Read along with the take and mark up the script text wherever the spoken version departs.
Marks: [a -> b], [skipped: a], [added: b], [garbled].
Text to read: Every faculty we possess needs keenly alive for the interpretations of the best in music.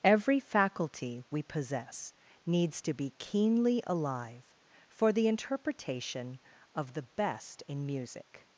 Every faculty we possess needs [added: to be] keenly alive for the [interpretations -> interpretation] of the best in music.